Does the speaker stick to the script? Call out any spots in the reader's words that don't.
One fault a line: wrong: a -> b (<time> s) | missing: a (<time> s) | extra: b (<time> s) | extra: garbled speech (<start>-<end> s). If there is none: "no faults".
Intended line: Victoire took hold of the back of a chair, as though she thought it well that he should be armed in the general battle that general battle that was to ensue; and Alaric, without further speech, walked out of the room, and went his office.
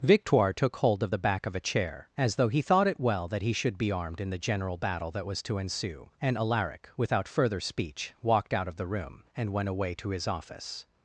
wrong: she -> he (2.5 s)
missing: general battle that (5.3 s)
extra: away to (9.7 s)